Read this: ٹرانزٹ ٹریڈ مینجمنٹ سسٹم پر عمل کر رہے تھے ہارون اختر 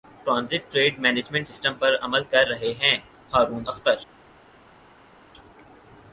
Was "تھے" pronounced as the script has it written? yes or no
no